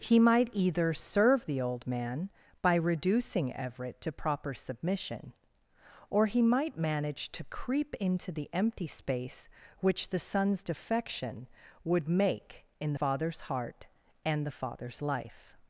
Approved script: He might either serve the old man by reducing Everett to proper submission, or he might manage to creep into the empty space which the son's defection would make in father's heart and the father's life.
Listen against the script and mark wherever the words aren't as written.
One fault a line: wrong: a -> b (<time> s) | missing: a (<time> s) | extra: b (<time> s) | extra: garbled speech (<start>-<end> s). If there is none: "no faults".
no faults